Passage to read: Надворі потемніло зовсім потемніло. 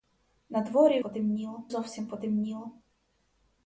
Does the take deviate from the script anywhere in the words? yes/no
no